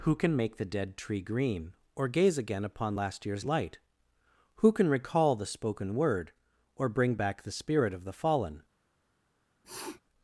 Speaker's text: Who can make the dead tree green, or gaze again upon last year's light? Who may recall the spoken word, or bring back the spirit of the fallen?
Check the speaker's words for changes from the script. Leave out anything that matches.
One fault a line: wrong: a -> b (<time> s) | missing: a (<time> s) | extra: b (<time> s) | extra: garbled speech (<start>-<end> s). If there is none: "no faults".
wrong: may -> can (4.7 s)